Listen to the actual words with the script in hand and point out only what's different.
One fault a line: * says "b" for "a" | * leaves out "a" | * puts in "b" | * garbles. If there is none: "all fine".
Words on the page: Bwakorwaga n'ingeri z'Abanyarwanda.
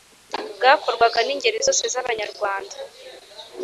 * puts in "zose"